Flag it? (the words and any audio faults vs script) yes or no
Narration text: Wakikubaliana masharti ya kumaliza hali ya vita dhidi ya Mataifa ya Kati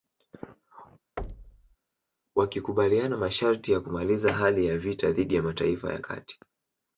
yes